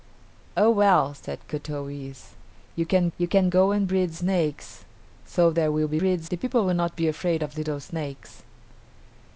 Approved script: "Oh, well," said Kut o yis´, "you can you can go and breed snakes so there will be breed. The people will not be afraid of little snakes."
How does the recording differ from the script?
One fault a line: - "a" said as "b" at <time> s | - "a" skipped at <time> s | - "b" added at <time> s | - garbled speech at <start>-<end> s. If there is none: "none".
none